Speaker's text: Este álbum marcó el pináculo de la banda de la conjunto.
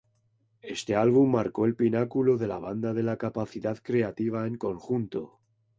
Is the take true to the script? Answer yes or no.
no